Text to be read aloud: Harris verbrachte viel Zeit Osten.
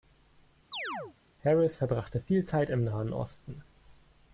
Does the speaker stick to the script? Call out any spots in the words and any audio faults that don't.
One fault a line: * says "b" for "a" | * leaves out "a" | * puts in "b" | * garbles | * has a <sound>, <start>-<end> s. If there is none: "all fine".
* has a chirp, 0.7-1.2 s
* puts in "im Nahen"